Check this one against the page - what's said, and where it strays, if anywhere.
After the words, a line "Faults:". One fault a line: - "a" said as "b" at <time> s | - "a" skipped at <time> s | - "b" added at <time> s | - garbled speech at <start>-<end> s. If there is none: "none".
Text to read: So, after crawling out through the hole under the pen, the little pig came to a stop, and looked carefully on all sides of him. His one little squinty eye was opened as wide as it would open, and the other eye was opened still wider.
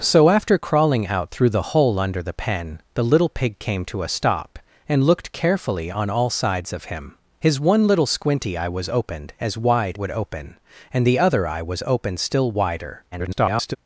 So, after crawling out through the hole under the pen, the little pig came to a stop, and looked carefully on all sides of him. His one little squinty eye was opened as wide would open, and the other eye was opened still wider. [garbled]
Faults:
- "as it" skipped at 10.0 s
- garbled speech at 13.1-13.8 s